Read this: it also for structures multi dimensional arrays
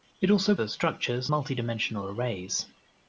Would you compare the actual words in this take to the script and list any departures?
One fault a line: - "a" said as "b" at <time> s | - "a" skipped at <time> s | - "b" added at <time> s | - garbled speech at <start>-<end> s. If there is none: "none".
none